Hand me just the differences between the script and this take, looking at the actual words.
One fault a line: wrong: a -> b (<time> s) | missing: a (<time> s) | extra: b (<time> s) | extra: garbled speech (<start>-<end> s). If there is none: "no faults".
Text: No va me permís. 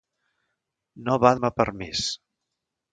no faults